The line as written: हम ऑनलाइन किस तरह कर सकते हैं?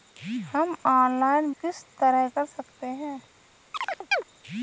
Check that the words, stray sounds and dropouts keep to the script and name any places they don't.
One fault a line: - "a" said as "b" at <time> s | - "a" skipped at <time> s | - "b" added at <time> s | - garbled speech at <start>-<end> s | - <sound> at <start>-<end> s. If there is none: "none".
- chirp at 3.7-4.2 s